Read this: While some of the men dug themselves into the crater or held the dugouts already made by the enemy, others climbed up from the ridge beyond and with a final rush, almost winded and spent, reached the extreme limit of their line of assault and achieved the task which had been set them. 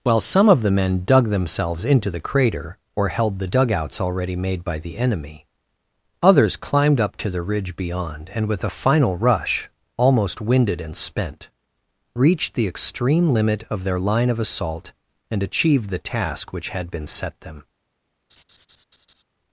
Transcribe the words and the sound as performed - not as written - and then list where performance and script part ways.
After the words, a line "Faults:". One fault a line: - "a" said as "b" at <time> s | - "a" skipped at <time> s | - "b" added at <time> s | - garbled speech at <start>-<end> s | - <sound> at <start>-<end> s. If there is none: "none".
While some of the men dug themselves into the crater or held the dugouts already made by the enemy, others climbed up to the ridge beyond and with a final rush, almost winded and spent, reached the extreme limit of their line of assault and achieved the task which had been set them.
Faults:
- "from" said as "to" at 7.2 s
- laugh at 18.3-19.2 s